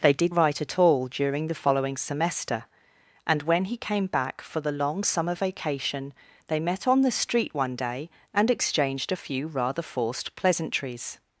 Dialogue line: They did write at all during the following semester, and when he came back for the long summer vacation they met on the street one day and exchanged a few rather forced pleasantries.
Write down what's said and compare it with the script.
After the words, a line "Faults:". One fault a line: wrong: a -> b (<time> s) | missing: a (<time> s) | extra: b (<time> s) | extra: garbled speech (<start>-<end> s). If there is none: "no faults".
They did write at all during the following semester, and when he came back for the long summer vacation they met on the street one day and exchanged a few rather forced pleasantries.
Faults:
no faults